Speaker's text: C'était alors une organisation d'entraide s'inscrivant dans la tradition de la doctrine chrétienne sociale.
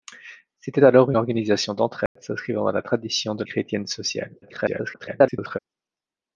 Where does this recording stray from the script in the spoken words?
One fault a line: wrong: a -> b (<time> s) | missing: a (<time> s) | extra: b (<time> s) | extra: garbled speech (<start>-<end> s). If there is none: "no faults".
missing: une (1.1 s)
missing: la doctrine (3.4 s)
extra: garbled speech (4.4-5.6 s)